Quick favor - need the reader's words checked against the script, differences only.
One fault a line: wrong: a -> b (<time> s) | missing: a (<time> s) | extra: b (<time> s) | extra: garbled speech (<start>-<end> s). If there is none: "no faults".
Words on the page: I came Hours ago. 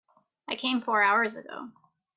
extra: Four (0.8 s)